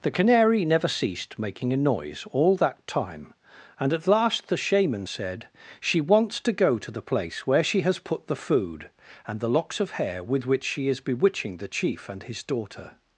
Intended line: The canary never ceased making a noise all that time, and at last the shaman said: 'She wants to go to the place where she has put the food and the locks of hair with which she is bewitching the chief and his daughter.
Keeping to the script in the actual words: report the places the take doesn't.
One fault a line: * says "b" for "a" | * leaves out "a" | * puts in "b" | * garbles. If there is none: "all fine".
all fine